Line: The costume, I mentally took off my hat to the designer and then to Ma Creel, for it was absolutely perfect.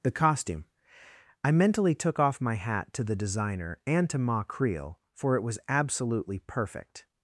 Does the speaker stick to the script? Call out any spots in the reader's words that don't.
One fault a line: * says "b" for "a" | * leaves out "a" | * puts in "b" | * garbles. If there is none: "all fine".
* leaves out "then"